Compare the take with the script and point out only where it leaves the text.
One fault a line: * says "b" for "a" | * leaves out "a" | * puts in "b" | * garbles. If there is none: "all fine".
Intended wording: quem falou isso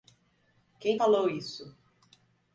all fine